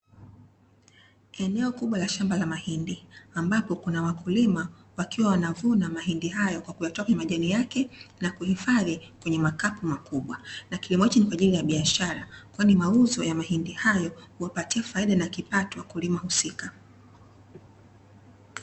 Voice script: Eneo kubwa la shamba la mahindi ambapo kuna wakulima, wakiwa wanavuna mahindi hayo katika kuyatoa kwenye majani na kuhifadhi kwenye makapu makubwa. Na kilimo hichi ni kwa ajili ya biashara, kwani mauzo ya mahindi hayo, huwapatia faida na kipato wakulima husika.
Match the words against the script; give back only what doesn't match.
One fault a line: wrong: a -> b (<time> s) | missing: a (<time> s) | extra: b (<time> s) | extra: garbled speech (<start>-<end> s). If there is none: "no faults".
wrong: katika -> kwa (6.6 s)
extra: yake (7.5 s)